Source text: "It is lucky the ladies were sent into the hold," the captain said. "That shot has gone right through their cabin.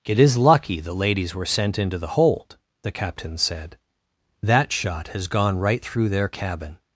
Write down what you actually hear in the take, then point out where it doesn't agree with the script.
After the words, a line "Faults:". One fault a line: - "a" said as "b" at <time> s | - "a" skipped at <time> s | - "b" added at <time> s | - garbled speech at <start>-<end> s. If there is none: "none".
"It is lucky the ladies were sent into the hold," the captain said. "That shot has gone right through their cabin.
Faults:
none